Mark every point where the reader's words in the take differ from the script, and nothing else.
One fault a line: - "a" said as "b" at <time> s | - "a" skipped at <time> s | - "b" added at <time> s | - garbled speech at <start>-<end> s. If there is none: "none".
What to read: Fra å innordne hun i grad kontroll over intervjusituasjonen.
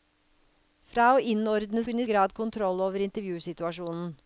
none